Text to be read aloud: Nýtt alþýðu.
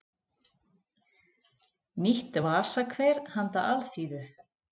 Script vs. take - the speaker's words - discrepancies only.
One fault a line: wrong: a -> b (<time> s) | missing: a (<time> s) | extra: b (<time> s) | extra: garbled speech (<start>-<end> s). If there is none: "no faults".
extra: vasakver handa (2.5 s)